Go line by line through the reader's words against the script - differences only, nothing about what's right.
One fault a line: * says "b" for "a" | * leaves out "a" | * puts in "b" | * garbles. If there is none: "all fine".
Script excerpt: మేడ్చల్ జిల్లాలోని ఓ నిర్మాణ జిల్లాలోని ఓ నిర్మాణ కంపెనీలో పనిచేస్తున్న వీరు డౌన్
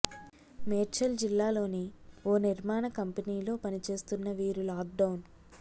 * leaves out "జిల్లాలోని ఓ నిర్మాణ"
* puts in "లాక్"